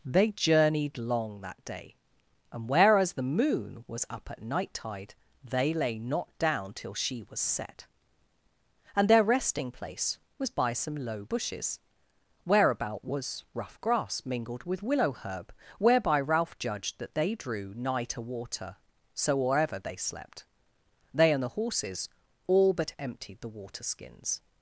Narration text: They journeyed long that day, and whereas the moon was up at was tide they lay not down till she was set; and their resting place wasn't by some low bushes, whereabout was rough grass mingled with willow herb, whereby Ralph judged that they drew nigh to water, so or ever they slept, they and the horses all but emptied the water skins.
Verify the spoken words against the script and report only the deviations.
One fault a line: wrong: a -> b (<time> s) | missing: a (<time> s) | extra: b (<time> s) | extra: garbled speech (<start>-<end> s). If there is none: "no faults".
wrong: was -> night (4.4 s)
wrong: wasn't -> was (10.4 s)